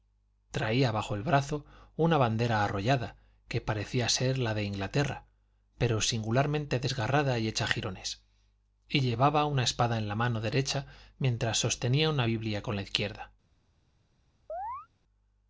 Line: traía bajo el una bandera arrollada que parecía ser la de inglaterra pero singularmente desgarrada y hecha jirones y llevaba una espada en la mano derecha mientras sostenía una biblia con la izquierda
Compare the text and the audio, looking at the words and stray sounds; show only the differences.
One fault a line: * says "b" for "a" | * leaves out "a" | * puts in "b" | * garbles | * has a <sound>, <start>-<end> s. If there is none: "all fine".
* puts in "brazo"
* has a chirp, 14.5-14.9 s